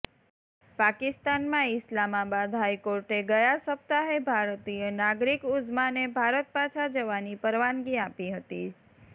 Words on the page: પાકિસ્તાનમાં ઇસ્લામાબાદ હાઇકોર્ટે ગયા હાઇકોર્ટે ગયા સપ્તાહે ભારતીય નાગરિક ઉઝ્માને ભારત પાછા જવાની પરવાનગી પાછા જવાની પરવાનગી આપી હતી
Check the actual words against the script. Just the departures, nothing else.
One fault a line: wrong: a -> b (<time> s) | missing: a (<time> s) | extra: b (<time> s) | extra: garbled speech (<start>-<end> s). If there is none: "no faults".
missing: હાઇકોર્ટે ગયા (3.5 s)
missing: પાછા જવાની પરવાનગી (8.0 s)